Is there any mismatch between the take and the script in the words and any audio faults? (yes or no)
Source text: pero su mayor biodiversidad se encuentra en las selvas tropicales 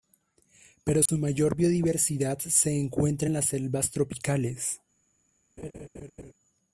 yes